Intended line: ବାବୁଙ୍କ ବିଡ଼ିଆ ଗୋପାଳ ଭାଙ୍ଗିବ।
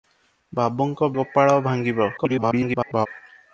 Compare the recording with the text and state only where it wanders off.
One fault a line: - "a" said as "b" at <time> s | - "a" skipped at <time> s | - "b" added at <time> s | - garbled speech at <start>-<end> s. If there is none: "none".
- "ବିଡ଼ିଆ" skipped at 1.1 s
- garbled speech at 2.2-3.1 s